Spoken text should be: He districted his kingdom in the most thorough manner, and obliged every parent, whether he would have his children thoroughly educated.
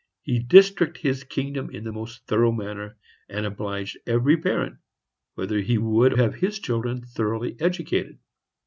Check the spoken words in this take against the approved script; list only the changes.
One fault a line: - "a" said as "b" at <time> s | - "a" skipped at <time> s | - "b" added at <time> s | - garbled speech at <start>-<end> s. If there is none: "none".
none